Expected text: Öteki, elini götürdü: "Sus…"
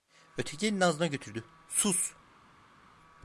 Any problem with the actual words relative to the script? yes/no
yes